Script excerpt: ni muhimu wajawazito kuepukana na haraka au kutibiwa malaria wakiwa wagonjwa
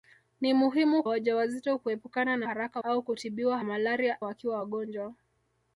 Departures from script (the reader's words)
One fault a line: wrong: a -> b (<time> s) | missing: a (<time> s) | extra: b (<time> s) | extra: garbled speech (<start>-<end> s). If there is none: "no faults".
no faults